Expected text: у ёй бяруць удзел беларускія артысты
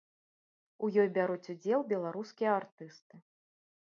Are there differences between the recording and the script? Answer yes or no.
no